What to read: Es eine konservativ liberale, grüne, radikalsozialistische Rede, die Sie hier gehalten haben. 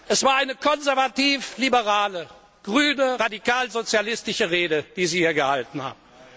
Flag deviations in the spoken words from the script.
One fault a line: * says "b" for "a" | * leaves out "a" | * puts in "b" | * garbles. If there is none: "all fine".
* puts in "war"